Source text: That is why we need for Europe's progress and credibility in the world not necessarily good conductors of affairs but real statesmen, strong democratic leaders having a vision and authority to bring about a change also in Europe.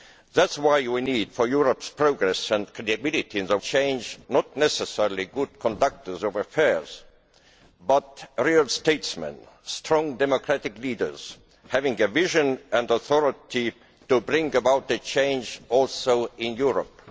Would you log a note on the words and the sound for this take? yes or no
yes